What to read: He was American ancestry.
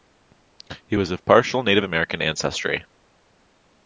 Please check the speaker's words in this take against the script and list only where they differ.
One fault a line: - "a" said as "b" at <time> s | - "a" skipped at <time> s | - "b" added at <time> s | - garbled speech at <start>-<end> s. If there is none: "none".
- "of partial Native" added at 1.1 s